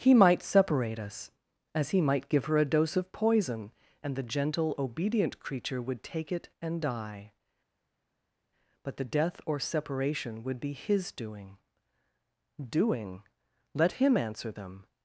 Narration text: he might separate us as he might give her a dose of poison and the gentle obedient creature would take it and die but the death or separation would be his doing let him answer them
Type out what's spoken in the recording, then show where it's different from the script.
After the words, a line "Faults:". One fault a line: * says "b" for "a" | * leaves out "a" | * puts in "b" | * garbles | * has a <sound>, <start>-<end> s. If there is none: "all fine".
he might separate us as he might give her a dose of poison and the gentle obedient creature would take it and die but the death or separation would be his doing doing let him answer them
Faults:
* puts in "doing"